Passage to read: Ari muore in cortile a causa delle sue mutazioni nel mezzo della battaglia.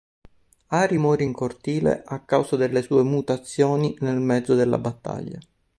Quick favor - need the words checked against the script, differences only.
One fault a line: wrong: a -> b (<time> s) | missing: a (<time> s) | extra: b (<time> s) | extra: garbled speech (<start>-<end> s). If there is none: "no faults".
no faults